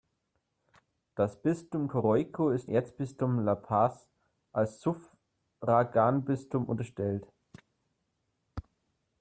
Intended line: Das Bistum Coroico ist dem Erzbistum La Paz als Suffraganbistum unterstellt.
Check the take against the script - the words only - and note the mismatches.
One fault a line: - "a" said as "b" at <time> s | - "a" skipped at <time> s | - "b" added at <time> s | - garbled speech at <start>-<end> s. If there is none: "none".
- "dem" skipped at 2.7 s